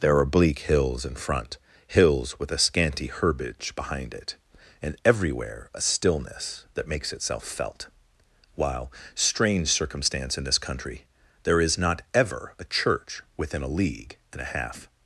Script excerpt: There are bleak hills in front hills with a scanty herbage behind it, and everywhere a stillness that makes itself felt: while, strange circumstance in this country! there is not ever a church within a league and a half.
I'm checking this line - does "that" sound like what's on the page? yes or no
yes